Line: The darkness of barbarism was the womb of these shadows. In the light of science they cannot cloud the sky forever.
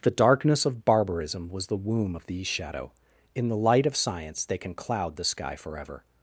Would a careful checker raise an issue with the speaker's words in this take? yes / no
yes